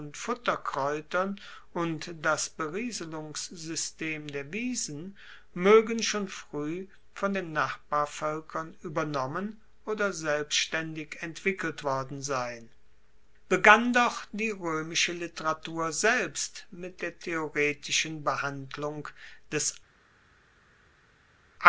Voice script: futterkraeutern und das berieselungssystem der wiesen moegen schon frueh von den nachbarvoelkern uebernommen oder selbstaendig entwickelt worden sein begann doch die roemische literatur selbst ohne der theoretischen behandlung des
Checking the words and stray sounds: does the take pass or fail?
fail